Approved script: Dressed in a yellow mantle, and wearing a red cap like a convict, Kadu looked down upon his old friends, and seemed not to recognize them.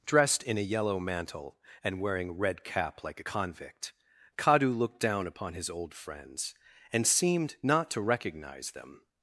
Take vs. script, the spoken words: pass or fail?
fail